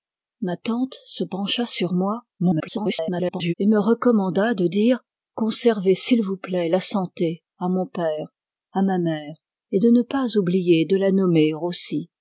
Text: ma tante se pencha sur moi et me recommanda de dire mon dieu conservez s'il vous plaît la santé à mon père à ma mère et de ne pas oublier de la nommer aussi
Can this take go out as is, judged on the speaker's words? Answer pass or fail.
fail